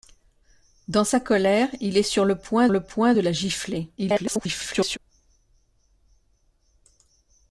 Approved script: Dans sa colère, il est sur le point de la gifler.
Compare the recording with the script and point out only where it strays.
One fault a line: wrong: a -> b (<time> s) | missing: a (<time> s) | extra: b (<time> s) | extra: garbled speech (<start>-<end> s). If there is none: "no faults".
extra: le point (2.7 s)
extra: garbled speech (4.0-5.0 s)